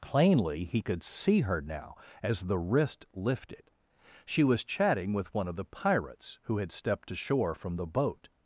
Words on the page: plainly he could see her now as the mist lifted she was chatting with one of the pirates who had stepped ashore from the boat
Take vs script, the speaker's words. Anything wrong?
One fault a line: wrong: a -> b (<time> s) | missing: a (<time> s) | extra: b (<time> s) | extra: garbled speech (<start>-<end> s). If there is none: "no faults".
wrong: mist -> wrist (2.6 s)